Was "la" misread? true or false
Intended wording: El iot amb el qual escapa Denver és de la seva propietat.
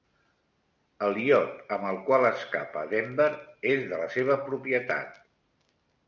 false